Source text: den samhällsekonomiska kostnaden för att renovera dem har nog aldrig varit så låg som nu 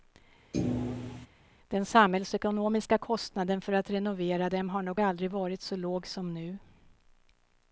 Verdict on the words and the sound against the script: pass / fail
fail